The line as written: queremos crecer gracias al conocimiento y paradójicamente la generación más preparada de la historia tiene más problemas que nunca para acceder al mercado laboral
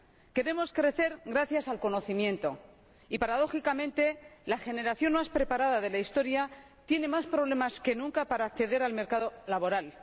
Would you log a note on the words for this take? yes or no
no